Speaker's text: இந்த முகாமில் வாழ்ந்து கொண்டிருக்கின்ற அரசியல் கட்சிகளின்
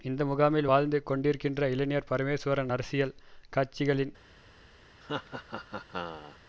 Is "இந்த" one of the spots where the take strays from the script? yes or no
no